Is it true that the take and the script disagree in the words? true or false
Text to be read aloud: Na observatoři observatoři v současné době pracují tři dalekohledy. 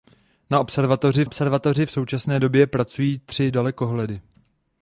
false